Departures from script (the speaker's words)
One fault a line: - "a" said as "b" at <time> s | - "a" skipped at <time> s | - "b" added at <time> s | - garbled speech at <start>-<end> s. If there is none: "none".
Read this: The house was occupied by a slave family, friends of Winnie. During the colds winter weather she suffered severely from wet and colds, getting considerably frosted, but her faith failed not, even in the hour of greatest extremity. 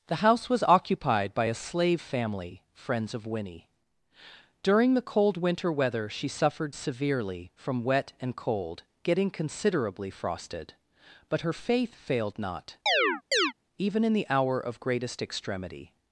- "colds" said as "cold" at 5.0 s
- "colds" said as "cold" at 8.4 s